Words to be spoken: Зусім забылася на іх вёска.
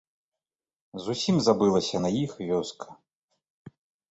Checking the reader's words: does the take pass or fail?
pass